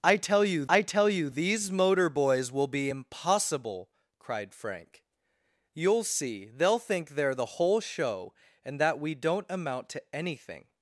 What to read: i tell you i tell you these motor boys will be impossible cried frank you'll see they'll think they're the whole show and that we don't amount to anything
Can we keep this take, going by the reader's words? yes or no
yes